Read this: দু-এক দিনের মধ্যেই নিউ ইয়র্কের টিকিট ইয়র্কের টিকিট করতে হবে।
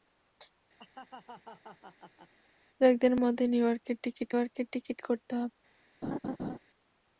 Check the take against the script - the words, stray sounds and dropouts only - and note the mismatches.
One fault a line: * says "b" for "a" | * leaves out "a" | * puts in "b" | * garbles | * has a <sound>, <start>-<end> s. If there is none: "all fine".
* has a laugh, 0.8-2.3 s
* has a laugh, 6.0-6.6 s